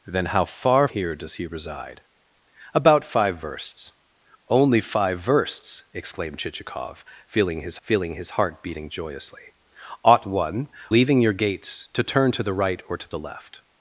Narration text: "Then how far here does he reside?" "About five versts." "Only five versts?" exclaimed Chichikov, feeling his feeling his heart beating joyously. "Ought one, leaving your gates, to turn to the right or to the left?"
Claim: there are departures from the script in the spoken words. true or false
false